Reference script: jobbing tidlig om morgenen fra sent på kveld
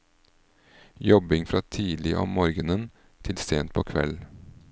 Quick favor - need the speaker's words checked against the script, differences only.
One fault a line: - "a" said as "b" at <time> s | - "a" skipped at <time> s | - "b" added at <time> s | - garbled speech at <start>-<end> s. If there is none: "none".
- "fra" added at 1.4 s
- "fra" said as "til" at 3.2 s